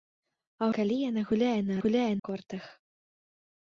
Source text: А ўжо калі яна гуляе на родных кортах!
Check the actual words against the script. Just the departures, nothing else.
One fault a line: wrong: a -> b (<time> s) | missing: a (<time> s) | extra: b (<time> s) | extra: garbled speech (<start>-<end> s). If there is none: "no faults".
missing: ўжо (0.7 s)
wrong: родных -> гуляе (1.8 s)